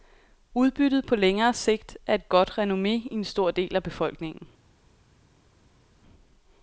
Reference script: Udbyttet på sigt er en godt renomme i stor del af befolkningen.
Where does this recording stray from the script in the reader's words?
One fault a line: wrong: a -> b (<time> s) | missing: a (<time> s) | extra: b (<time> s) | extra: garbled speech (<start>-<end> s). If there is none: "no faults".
extra: længere (1.1 s)
wrong: en -> et (2.1 s)
extra: en (3.1 s)